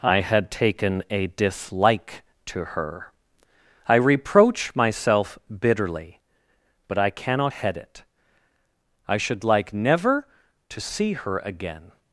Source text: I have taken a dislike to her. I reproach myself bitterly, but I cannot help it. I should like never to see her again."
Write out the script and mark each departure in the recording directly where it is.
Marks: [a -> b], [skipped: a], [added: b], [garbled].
I [have -> had] taken a dislike to her. I reproach myself bitterly, but I cannot [help -> head] it. I should like never to see her again."